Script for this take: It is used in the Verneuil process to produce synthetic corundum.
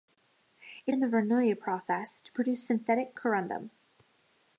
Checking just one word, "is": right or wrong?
wrong